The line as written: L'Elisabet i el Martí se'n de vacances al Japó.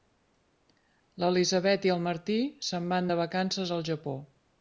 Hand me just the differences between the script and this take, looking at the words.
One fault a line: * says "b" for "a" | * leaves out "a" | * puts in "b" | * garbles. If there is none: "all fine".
* puts in "van"